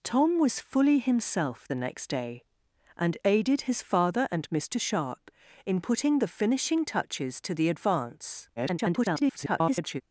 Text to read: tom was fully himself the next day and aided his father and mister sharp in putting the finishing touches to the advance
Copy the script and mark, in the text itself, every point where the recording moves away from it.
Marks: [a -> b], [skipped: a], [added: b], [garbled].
tom was fully himself the next day and aided his father and mister sharp in putting the finishing touches to the advance [garbled]